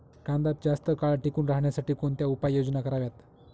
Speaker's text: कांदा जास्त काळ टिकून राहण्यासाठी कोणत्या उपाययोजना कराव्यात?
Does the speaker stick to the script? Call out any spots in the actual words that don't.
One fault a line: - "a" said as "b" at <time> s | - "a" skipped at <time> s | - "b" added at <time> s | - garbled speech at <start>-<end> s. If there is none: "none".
none